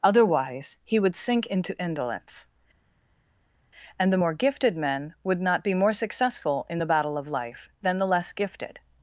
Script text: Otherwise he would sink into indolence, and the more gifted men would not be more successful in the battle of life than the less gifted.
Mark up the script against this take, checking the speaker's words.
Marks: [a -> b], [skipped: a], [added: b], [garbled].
Otherwise he would sink into indolence, and the more gifted men would not be more successful in the battle of life than the less gifted.